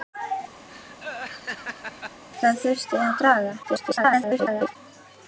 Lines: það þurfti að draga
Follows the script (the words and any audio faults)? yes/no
no